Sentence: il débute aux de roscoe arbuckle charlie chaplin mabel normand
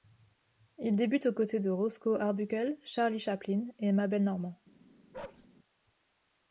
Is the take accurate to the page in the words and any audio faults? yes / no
no